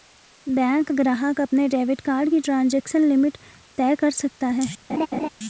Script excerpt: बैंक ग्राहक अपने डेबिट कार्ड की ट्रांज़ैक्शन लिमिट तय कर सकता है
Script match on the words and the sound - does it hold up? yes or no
no